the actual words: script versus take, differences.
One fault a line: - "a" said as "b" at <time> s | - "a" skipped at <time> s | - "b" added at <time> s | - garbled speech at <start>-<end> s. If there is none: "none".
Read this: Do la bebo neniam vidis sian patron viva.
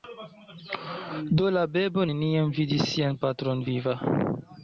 none